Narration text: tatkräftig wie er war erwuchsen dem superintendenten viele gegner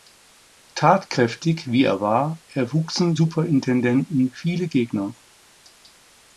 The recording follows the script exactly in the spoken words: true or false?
false